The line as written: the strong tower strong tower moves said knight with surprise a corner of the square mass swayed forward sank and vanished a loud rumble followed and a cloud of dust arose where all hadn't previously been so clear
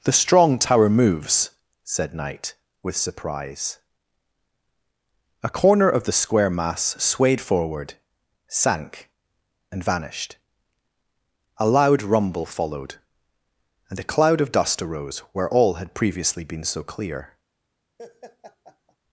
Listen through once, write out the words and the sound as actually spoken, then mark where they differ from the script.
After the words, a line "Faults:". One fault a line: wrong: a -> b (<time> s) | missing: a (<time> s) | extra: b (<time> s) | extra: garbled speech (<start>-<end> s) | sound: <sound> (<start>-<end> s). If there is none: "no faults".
the strong tower moves said knight with surprise a corner of the square mass swayed forward sank and vanished a loud rumble followed and a cloud of dust arose where all had previously been so clear
Faults:
missing: strong tower (0.9 s)
wrong: hadn't -> had (15.8 s)
sound: laugh (18.0-19.0 s)